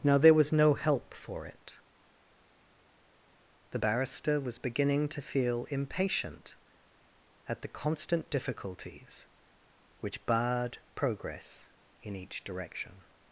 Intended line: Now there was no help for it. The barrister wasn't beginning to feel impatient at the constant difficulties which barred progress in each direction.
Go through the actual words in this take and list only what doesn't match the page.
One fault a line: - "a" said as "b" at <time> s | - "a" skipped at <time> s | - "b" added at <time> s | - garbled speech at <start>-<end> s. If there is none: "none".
- "wasn't" said as "was" at 4.4 s